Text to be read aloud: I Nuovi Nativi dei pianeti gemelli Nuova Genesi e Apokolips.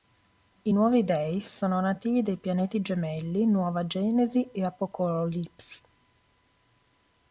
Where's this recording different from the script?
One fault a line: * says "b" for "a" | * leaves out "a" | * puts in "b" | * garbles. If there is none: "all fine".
* puts in "Dei sono"